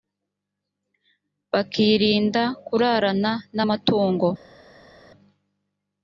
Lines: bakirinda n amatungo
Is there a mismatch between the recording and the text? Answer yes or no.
yes